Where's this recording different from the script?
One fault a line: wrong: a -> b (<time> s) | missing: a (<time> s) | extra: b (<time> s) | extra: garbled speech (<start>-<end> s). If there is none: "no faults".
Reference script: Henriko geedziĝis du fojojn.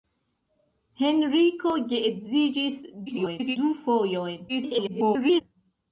extra: garbled speech (3.1-3.6 s)
extra: garbled speech (4.5-5.4 s)